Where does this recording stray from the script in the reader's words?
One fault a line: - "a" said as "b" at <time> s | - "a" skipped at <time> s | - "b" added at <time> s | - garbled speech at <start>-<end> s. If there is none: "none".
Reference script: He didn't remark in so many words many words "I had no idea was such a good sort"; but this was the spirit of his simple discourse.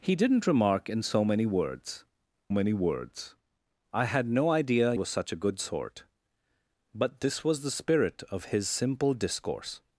none